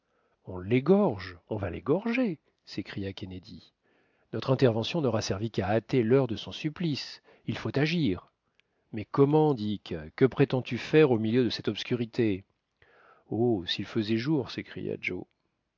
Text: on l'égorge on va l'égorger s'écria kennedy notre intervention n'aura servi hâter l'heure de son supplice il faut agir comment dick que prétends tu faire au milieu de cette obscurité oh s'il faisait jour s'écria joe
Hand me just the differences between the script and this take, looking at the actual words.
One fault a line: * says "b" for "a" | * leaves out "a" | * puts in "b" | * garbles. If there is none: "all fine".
* puts in "qu'à"
* puts in "mais"